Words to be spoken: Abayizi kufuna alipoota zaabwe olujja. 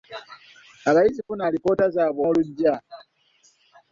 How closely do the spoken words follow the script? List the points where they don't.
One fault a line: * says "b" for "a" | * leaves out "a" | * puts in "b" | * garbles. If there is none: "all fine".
all fine